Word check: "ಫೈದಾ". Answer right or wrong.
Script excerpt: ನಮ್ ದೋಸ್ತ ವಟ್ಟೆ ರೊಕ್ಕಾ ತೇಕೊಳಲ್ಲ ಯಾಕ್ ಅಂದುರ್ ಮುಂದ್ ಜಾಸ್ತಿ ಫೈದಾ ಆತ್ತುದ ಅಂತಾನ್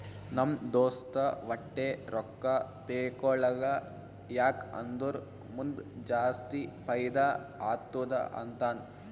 right